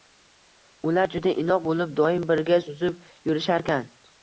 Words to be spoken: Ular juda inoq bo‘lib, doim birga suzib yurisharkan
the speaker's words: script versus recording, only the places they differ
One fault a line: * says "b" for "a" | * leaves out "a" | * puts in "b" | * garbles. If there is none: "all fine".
all fine